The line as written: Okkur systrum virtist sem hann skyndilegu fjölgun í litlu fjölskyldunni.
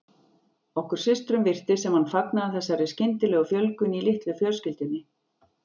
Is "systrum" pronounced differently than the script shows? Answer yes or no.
no